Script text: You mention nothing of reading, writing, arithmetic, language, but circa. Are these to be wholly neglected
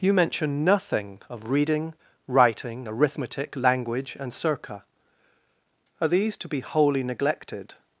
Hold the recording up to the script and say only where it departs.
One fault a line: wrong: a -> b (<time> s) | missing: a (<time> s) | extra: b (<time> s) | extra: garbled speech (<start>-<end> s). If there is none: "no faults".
wrong: but -> and (4.2 s)